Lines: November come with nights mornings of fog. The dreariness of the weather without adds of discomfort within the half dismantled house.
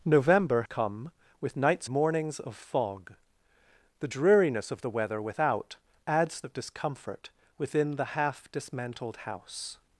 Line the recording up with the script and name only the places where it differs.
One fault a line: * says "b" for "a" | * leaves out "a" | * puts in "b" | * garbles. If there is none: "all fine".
all fine